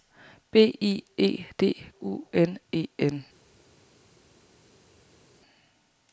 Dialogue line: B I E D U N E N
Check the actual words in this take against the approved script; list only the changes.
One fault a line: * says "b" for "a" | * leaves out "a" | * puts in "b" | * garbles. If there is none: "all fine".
all fine